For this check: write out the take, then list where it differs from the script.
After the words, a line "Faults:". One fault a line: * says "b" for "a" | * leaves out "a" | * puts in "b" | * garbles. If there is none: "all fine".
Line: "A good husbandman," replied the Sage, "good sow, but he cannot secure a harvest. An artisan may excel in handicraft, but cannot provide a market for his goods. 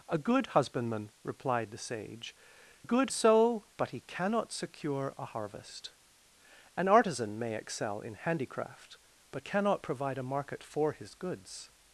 "A good husbandman," replied the Sage, "good sow, but he cannot secure a harvest. An artisan may excel in handicraft, but cannot provide a market for his goods.
Faults:
all fine